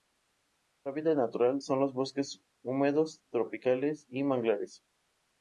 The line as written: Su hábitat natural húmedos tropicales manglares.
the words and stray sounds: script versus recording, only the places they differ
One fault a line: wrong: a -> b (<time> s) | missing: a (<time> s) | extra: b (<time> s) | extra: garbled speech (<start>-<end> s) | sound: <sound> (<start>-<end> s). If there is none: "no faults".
extra: son los bosques (1.6 s)
extra: y (4.1 s)